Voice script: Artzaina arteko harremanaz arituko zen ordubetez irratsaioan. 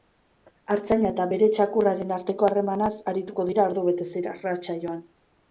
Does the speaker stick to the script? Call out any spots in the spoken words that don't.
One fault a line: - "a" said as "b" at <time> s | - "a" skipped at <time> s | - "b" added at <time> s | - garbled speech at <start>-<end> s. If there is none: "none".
- "eta bere txakurraren" added at 1.1 s
- "zen" said as "dira" at 3.5 s